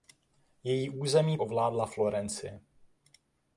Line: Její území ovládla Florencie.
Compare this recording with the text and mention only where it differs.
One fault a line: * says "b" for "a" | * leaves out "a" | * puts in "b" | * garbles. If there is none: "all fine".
all fine